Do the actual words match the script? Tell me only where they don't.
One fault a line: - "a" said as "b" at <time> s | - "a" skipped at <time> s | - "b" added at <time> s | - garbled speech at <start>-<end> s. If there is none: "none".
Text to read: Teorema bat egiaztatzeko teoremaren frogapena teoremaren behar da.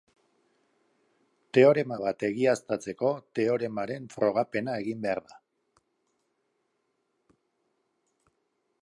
- "teoremaren" said as "egin" at 4.9 s